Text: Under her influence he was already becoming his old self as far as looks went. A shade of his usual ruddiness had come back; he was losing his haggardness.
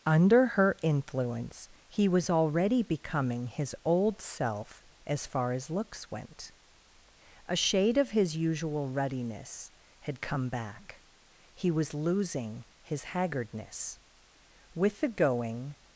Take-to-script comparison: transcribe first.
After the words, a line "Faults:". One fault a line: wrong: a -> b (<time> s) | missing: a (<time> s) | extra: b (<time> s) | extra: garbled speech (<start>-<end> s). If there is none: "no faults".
Under her influence he was already becoming his old self as far as looks went. A shade of his usual ruddiness had come back; he was losing his haggardness. With the going
Faults:
extra: With the going (14.7 s)